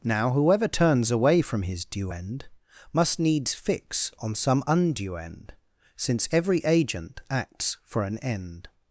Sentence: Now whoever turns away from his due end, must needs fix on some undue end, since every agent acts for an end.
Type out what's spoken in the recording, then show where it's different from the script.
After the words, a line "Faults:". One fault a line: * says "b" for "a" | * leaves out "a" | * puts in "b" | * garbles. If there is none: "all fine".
Now whoever turns away from his due end, must needs fix on some undue end, since every agent acts for an end.
Faults:
all fine